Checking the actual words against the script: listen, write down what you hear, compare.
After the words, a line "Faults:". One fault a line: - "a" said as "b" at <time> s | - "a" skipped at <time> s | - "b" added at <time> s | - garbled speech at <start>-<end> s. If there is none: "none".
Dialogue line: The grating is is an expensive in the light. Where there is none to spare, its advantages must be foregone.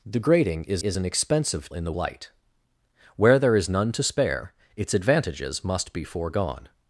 The grating is is an expensive in the light. Where there is none to spare, its advantages must be foregone.
Faults:
none